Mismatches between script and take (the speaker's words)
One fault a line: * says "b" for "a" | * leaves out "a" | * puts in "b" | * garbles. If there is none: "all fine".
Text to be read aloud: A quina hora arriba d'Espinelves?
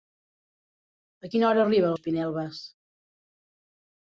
all fine